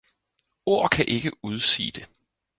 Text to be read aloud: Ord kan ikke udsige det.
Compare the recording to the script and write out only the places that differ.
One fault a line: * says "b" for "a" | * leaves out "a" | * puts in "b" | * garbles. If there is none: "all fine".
all fine